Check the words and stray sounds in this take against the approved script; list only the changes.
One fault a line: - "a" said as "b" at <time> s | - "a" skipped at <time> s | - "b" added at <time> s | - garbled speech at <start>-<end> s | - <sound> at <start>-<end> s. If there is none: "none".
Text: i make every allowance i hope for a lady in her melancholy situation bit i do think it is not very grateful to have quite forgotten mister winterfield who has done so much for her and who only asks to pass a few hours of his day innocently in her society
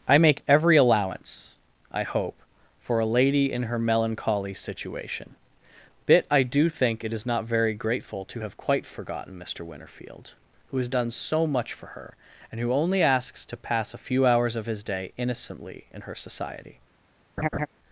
- laugh at 17.4-17.7 s